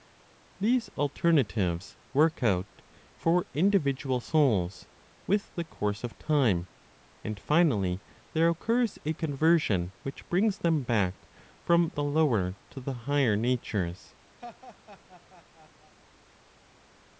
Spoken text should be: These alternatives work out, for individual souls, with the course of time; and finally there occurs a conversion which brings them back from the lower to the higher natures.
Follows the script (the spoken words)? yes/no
yes